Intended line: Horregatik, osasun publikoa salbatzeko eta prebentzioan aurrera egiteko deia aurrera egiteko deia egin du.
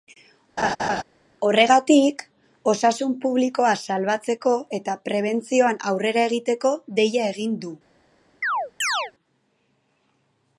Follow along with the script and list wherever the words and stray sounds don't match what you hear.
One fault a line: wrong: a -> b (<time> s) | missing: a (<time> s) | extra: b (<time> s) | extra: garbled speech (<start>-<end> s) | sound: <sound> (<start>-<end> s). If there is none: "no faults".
sound: laugh (0.6-1.0 s)
missing: aurrera egiteko deia (7.3 s)
sound: chirp (8.4-9.1 s)